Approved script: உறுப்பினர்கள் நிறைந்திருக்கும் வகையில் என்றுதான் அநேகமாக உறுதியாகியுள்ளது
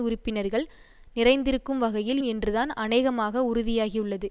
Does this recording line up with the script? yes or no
yes